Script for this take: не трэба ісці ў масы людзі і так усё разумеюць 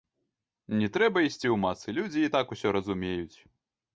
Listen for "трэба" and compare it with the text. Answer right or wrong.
right